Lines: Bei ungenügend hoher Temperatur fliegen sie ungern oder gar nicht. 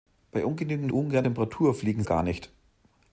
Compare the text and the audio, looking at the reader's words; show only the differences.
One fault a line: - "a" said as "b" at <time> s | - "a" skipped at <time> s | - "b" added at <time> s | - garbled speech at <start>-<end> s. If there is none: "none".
- "hoher" said as "ungern" at 0.9 s
- "sie ungern oder" skipped at 2.0 s